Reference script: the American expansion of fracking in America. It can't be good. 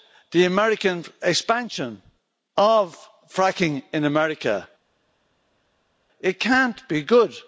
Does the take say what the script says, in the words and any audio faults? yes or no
yes